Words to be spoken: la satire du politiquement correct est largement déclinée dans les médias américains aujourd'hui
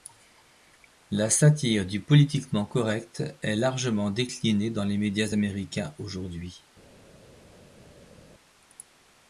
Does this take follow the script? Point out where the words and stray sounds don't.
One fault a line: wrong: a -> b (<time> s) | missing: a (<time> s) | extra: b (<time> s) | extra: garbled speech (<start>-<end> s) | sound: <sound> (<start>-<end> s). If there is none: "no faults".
no faults